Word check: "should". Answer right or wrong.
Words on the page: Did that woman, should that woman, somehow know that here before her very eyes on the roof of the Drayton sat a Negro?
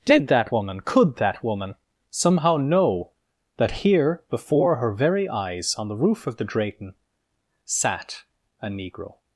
wrong